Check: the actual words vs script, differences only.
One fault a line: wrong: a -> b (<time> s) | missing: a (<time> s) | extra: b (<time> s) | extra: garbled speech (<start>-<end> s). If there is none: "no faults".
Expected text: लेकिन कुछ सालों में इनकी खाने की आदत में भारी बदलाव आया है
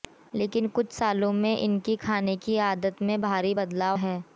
missing: आया (4.0 s)